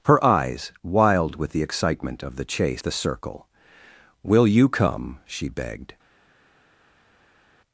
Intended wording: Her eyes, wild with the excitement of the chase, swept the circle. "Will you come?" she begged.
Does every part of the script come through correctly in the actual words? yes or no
no